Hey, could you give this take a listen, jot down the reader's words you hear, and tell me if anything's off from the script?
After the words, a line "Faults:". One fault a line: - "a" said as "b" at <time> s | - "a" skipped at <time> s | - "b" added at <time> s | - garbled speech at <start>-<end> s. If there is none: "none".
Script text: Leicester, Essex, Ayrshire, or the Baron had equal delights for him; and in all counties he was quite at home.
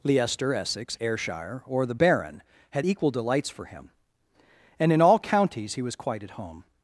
Leicester, Essex, Ayrshire, or the Baron had equal delights for him; and in all counties he was quite at home.
Faults:
none